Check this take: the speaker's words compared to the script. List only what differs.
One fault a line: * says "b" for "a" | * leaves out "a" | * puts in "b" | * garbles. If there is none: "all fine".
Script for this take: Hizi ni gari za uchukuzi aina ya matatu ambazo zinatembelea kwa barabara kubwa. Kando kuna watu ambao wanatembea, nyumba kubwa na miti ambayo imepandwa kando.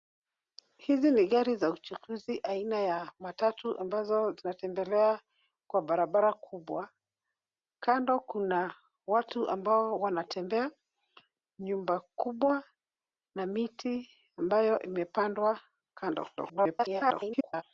* garbles